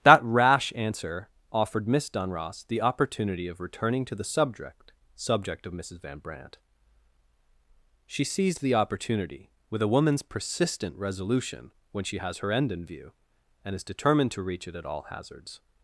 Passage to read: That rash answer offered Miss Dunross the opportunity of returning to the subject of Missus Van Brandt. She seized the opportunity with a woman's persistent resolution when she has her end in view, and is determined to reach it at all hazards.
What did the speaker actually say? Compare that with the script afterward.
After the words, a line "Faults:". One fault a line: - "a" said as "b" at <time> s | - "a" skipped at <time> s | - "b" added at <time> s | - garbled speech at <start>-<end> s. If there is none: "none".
That rash answer offered Miss Dunross the opportunity of returning to the subject subject of Missus Van Brandt. She seized the opportunity with a woman's persistent resolution when she has her end in view, and is determined to reach it at all hazards.
Faults:
- "subject" added at 5.2 s